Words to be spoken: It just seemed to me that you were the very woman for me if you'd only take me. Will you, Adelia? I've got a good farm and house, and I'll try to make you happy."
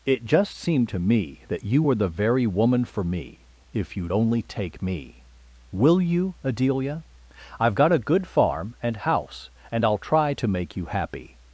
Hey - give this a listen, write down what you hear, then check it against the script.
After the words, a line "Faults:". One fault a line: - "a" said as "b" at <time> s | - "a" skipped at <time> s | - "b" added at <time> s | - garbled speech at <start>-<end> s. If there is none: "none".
It just seemed to me that you were the very woman for me if you'd only take me. Will you, Adelia? I've got a good farm and house, and I'll try to make you happy."
Faults:
none